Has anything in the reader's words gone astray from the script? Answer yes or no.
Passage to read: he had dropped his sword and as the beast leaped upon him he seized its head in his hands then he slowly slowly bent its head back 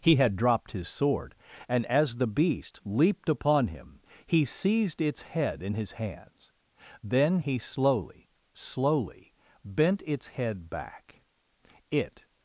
yes